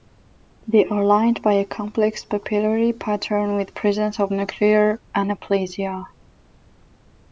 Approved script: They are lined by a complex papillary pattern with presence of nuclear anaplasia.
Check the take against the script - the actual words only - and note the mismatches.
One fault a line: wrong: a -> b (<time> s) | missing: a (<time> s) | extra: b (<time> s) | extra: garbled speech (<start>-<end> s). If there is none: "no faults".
no faults